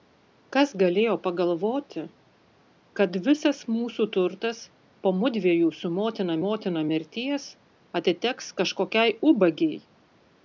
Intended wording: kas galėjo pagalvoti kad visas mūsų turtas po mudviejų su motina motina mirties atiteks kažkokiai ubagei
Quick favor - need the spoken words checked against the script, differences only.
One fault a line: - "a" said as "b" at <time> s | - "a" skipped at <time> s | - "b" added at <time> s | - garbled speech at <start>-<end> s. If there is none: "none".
none